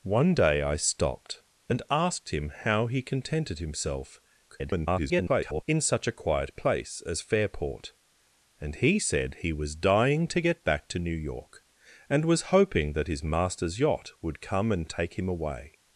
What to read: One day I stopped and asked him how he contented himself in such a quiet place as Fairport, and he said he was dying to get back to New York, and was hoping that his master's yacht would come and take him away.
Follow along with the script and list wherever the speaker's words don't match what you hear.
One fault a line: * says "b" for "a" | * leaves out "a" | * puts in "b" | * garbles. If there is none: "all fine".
* garbles